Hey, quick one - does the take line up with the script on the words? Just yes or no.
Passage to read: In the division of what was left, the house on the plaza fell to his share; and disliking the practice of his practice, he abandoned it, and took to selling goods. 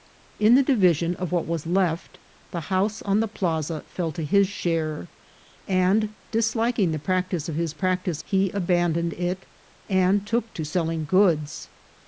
yes